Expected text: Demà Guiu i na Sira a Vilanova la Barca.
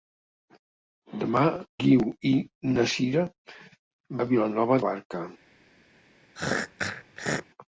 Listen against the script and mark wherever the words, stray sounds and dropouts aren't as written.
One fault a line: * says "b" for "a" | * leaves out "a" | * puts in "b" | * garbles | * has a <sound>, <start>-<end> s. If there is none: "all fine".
* has a throat clearing, 6.4-7.5 s